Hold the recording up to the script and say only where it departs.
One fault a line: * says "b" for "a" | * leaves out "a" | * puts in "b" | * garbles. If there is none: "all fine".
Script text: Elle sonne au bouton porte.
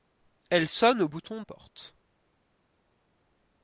all fine